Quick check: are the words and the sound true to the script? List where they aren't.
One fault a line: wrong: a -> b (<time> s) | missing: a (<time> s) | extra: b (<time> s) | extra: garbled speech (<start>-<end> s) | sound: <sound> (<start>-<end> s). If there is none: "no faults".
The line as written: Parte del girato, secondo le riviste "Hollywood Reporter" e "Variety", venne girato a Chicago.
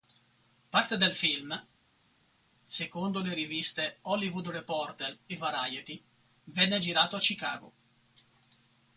wrong: girato -> film (1.1 s)